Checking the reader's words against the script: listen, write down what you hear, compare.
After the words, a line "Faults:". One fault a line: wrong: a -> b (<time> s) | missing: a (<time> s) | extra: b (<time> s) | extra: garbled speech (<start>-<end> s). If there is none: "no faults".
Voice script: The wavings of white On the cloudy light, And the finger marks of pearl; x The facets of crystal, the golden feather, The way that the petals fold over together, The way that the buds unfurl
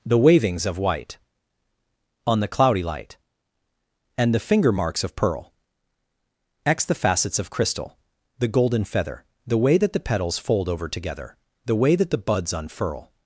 The wavings of white On the cloudy light, And the finger marks of pearl; x The facets of crystal, the golden feather, The way that the petals fold over together, The way that the buds unfurl
Faults:
no faults